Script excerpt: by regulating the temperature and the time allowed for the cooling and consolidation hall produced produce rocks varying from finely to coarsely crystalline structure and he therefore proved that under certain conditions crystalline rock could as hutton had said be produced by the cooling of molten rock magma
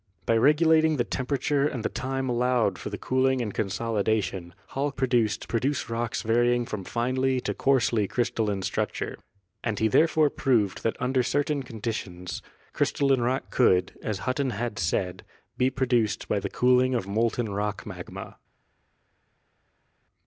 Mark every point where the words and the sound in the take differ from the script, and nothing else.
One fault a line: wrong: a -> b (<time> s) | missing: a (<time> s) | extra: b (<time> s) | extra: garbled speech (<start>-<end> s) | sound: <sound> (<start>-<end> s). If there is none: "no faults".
no faults